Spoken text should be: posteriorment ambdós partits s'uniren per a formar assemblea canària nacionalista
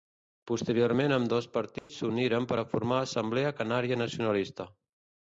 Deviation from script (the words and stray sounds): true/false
true